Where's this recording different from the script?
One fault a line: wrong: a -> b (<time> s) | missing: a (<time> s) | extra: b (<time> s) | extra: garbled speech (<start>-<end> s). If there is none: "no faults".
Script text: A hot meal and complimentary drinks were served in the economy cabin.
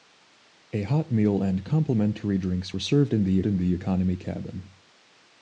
extra: in the (3.5 s)